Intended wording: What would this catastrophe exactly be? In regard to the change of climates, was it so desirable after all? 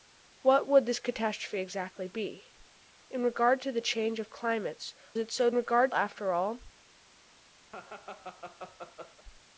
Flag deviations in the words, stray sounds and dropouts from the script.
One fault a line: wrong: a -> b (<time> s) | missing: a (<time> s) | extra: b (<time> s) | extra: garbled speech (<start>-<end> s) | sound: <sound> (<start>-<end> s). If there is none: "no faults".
missing: was (4.9 s)
wrong: desirable -> regard (5.5 s)
sound: laugh (7.7-9.2 s)